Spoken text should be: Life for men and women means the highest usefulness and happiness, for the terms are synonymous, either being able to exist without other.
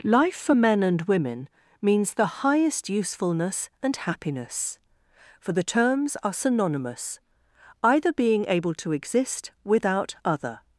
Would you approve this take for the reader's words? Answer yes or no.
yes